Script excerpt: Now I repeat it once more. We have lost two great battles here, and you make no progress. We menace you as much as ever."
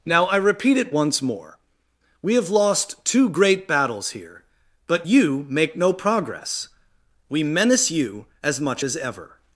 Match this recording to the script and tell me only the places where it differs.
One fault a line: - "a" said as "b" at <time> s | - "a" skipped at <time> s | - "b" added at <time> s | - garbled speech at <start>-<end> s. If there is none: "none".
- "and" said as "but" at 4.9 s